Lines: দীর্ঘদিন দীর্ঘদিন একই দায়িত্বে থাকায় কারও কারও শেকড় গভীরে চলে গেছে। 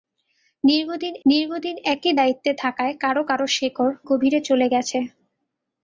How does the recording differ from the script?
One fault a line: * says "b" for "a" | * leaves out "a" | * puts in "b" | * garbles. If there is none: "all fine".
all fine